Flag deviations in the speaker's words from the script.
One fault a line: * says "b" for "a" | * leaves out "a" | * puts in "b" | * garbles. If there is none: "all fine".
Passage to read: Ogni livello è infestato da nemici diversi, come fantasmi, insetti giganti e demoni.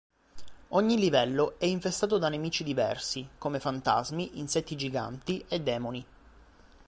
all fine